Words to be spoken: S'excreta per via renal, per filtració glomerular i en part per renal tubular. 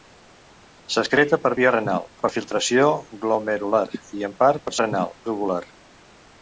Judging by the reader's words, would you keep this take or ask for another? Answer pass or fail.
pass